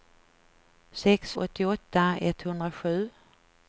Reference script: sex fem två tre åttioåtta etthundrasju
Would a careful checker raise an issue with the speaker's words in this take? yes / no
yes